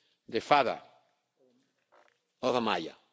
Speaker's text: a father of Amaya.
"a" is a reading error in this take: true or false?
true